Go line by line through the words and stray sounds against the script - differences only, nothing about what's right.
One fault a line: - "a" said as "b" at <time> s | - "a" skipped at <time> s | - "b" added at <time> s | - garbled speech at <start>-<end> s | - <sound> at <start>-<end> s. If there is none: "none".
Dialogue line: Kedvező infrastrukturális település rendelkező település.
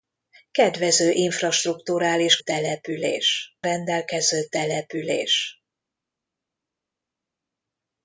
none